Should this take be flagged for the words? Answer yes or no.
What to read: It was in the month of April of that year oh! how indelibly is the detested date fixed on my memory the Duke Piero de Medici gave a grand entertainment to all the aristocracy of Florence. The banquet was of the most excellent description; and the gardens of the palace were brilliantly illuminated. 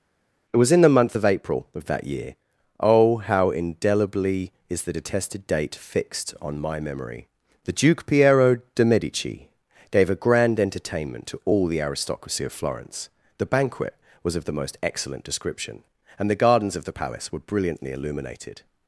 no